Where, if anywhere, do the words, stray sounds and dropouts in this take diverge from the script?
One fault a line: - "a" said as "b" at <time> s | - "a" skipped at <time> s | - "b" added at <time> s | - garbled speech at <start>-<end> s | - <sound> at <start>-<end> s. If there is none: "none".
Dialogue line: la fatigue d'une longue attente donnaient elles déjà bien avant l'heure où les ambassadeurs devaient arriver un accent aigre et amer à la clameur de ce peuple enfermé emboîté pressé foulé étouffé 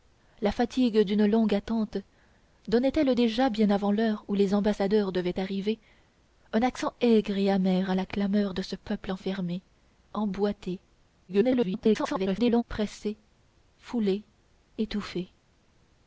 - garbled speech at 11.3-12.6 s